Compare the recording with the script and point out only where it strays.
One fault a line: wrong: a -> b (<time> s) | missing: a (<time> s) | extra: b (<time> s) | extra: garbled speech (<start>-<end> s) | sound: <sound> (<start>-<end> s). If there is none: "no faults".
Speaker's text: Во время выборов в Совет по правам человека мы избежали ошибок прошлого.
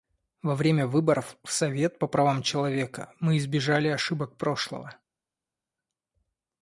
no faults